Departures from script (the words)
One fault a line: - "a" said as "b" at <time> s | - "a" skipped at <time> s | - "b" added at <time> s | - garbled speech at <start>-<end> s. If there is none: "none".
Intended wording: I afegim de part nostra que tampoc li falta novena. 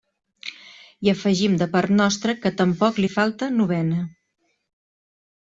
none